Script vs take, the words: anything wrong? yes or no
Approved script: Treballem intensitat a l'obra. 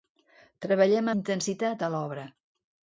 no